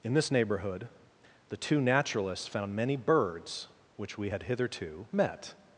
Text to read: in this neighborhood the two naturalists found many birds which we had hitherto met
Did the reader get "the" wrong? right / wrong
right